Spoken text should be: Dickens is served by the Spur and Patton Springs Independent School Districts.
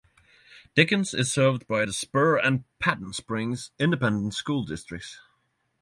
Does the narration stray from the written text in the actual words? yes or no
no